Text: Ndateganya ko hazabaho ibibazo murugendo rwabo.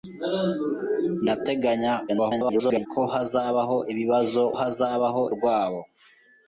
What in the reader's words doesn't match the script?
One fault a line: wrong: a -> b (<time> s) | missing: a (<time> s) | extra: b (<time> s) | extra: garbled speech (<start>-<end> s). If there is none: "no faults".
extra: garbled speech (2.1-2.9 s)
wrong: murugendo -> hazabaho (4.6 s)